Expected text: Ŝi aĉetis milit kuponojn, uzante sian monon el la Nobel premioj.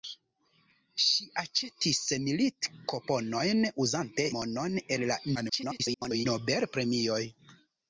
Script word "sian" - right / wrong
wrong